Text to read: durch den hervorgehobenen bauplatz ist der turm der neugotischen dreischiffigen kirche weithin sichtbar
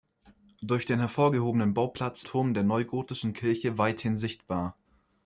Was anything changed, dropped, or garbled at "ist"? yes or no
yes